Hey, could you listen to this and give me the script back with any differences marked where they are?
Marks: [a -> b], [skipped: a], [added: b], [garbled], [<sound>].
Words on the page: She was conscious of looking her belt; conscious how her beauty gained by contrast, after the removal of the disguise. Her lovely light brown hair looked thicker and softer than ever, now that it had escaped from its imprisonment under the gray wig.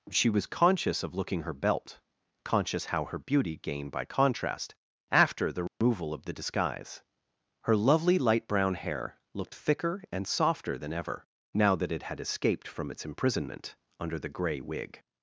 She was conscious of looking her belt; conscious how her beauty gained by contrast, after the removal [dropout] of the disguise. Her lovely light brown hair looked thicker and softer than ever, now that it had escaped from its imprisonment under the gray wig.